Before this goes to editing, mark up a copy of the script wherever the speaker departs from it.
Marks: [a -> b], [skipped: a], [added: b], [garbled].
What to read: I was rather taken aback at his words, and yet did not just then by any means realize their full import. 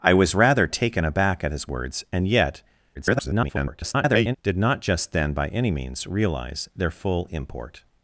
I was rather taken aback at his words, and yet [garbled] did not just then by any means realize their full import.